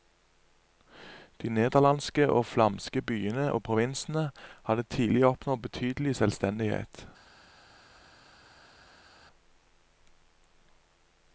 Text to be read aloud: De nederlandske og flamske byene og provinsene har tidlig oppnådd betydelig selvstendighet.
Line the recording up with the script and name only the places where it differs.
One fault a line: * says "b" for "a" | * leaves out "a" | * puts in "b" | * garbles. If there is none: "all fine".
* says "hadde" for "har"